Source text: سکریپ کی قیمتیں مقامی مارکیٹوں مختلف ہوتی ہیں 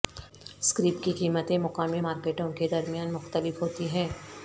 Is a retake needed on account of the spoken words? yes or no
yes